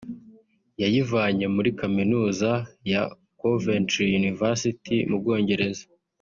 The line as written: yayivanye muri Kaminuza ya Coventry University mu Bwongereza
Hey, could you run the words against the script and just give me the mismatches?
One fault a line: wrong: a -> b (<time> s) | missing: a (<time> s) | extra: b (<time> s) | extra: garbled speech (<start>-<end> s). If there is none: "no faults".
no faults